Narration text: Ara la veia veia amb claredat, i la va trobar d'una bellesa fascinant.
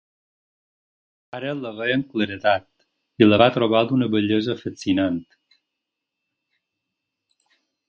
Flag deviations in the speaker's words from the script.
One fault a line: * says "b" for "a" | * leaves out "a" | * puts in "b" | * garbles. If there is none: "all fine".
* leaves out "veia"